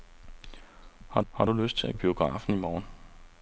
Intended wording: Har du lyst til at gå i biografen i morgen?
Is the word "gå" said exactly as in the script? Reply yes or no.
no